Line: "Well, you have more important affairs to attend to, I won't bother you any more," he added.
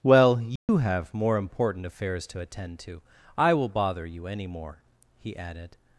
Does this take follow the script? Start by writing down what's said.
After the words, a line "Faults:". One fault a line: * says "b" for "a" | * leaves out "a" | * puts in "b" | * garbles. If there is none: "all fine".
"Well, you have more important affairs to attend to, I will bother you any more," he added.
Faults:
* says "will" for "won't"